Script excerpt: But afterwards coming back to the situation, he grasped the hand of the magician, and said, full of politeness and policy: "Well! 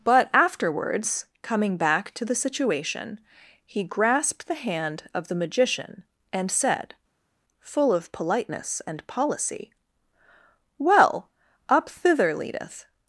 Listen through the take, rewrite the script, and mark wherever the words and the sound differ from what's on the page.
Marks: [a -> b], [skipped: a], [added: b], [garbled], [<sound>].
But afterwards coming back to the situation, he grasped the hand of the magician, and said, full of politeness and policy: "Well! [added: Up thither leadeth]